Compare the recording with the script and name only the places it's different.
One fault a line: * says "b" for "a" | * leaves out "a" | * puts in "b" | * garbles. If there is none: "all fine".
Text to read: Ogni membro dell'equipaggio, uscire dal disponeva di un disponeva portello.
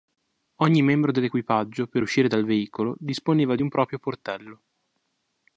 * puts in "per"
* puts in "veicolo"
* says "proprio" for "disponeva"